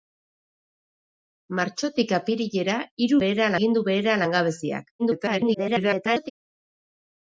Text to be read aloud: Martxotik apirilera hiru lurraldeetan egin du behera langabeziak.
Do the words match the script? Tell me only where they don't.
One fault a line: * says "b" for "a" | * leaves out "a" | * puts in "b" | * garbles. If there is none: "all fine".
* says "behera" for "lurraldeetan"
* garbles